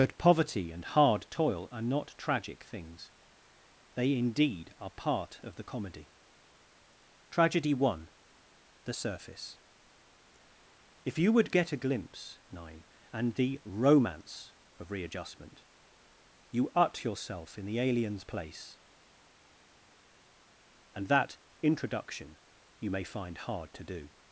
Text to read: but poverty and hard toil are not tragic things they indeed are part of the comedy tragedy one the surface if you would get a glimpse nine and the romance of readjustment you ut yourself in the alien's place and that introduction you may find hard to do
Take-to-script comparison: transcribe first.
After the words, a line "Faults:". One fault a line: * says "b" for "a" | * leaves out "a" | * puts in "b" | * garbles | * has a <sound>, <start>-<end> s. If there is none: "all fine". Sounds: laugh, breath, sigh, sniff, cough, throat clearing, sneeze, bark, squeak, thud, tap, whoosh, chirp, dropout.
but poverty and hard toil are not tragic things they indeed are part of the comedy tragedy one the surface if you would get a glimpse nine and the romance of readjustment you ut yourself in the alien's place and that introduction you may find hard to do
Faults:
all fine